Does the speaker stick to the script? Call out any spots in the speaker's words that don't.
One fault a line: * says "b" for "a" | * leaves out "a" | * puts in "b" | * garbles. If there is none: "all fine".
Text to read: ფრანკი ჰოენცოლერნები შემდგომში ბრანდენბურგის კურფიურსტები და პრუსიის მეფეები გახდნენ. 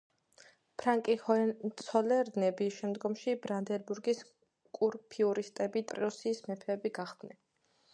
* leaves out "და"